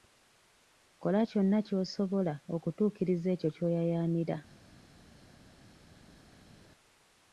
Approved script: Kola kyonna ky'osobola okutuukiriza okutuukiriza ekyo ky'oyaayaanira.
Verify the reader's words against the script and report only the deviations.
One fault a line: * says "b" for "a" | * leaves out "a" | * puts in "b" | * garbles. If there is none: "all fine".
* leaves out "okutuukiriza"